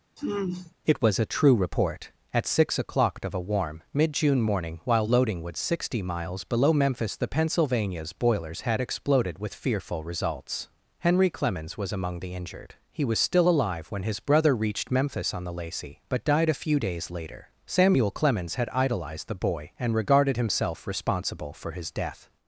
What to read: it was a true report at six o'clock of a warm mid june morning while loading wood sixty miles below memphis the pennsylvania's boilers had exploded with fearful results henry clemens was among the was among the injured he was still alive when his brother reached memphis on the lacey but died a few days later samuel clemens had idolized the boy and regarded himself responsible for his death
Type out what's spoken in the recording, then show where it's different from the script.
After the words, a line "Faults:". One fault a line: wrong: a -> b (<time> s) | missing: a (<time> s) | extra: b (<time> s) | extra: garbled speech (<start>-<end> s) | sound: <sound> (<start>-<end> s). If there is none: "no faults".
it was a true report at six o'clock of a warm mid june morning while loading wood sixty miles below memphis the pennsylvania's boilers had exploded with fearful results henry clemens was among the injured he was still alive when his brother reached memphis on the lacey but died a few days later samuel clemens had idolized the boy and regarded himself responsible for his death
Faults:
sound: sigh (0.2-0.8 s)
missing: was among the (12.4 s)